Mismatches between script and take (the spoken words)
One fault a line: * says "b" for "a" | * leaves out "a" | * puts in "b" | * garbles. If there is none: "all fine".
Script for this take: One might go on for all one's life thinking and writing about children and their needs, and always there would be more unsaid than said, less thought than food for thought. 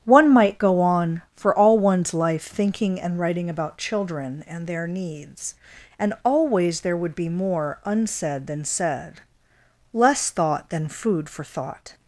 all fine